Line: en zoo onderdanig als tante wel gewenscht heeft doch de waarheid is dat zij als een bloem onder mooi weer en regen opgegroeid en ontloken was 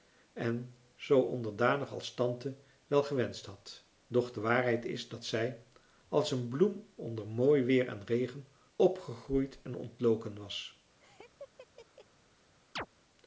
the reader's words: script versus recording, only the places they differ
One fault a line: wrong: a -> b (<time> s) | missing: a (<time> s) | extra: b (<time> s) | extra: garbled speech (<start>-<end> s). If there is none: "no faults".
wrong: heeft -> had (3.5 s)